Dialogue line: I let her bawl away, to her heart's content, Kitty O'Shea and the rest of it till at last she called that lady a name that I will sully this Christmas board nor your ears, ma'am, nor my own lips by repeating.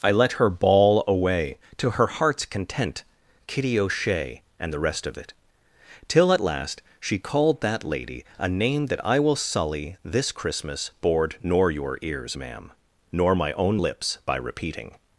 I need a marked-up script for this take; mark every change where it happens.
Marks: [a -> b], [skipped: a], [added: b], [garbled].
I let her bawl away, to her heart's content, Kitty O'Shea and the rest of it till at last she called that lady a name that I will sully this Christmas board nor your ears, ma'am, nor my own lips by repeating.